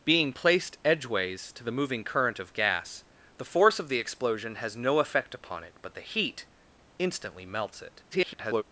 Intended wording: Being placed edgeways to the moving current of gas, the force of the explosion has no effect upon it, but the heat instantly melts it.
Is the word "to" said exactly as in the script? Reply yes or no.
yes